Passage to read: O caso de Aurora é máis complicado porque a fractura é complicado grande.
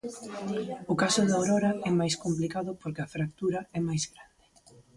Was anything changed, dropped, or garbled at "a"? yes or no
no